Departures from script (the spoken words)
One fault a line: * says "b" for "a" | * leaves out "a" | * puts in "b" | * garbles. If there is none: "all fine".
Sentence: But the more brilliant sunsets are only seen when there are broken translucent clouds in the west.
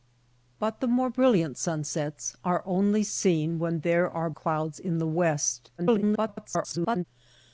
* leaves out "broken translucent"
* garbles